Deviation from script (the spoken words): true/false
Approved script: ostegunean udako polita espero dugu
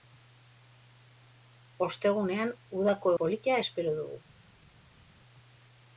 false